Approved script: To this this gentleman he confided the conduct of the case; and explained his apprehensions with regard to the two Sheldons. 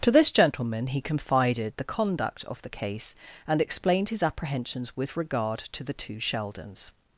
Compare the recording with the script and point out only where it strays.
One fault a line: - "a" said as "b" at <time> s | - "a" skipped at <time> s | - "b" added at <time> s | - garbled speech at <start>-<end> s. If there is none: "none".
- "this" skipped at 0.3 s